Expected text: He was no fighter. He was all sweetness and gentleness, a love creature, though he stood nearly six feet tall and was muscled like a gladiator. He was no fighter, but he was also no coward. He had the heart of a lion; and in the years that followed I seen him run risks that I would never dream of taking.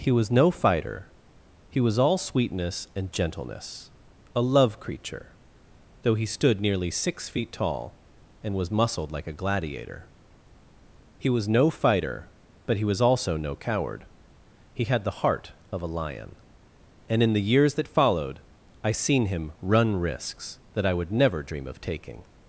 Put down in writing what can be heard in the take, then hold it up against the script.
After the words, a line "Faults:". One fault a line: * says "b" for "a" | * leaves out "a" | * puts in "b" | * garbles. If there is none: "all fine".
He was no fighter. He was all sweetness and gentleness, a love creature, though he stood nearly six feet tall and was muscled like a gladiator. He was no fighter, but he was also no coward. He had the heart of a lion; and in the years that followed I seen him run risks that I would never dream of taking.
Faults:
all fine